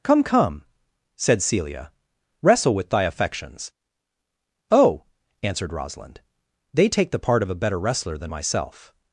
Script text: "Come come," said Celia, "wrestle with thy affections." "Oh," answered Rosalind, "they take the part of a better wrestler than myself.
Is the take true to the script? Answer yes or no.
yes